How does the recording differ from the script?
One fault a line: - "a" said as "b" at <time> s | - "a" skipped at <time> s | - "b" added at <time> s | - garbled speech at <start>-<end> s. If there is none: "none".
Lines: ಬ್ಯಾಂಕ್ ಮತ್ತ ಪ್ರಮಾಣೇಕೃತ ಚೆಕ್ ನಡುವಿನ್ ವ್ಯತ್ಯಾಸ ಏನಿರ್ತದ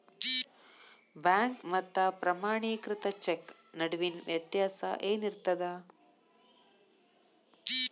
none